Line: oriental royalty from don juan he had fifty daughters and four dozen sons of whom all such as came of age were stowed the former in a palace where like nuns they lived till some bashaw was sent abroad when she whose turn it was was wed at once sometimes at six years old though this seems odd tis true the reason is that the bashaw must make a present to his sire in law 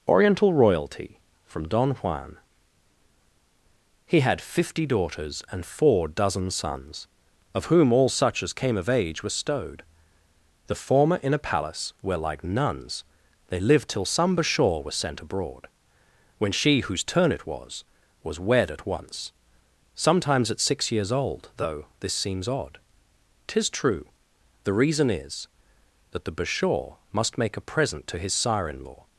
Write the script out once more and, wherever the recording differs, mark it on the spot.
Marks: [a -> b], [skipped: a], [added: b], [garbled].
oriental royalty from don juan he had fifty daughters and four dozen sons of whom all such as came of age were stowed the former in a palace where like nuns they lived till some bashaw was sent abroad when she whose turn it was was wed at once sometimes at six years old though this seems odd tis true the reason is that the bashaw must make a present to his sire in law